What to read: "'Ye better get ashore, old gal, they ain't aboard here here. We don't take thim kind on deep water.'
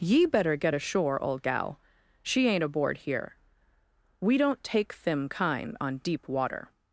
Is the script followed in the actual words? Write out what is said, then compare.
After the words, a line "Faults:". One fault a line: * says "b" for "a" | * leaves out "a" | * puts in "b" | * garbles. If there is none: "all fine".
"'Ye better get ashore, old gal, she ain't aboard here. We don't take thim kind on deep water.'
Faults:
* says "she" for "they"
* leaves out "here"